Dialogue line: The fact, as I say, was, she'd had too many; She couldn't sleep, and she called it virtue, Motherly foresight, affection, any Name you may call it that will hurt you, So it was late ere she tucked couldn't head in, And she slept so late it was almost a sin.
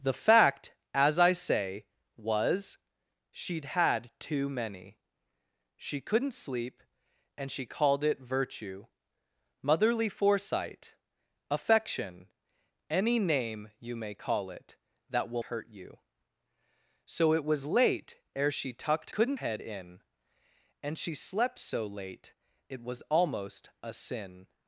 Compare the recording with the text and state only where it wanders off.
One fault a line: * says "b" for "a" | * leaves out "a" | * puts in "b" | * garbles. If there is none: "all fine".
all fine